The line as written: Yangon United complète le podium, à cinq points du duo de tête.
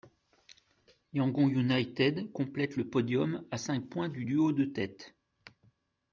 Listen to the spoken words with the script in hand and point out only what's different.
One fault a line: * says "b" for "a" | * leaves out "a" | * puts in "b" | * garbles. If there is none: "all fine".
all fine